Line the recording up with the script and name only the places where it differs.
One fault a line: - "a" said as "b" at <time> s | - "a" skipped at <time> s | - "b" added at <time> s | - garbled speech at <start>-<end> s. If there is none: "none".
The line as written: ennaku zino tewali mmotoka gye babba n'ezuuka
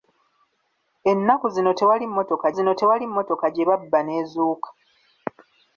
- "zino tewali mmotoka" added at 2.6 s